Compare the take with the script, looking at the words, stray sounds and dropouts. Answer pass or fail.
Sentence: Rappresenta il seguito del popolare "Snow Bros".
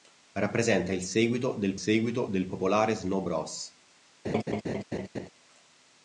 fail